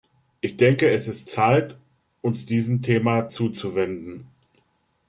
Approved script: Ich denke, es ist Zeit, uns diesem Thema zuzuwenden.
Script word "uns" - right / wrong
right